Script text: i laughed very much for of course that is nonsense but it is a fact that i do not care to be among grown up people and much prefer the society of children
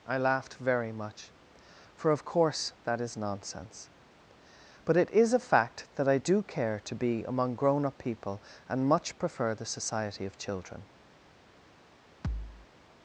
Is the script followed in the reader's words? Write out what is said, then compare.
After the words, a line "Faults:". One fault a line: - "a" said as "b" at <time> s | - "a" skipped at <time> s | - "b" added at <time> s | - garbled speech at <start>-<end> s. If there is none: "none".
i laughed very much for of course that is nonsense but it is a fact that i do care to be among grown up people and much prefer the society of children
Faults:
- "not" skipped at 6.4 s